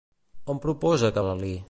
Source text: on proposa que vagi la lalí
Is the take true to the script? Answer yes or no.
no